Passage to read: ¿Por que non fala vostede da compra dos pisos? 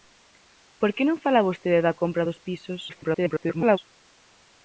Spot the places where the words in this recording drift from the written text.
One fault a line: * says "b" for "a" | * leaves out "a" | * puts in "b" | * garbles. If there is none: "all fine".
* garbles